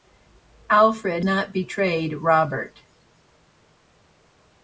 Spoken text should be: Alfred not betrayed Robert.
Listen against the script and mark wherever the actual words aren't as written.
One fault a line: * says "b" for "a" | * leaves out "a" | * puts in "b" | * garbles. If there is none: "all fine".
all fine